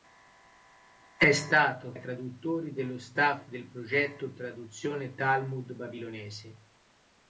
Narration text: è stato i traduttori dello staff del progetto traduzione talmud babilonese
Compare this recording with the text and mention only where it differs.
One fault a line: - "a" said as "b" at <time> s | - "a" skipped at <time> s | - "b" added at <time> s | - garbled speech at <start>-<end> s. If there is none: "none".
none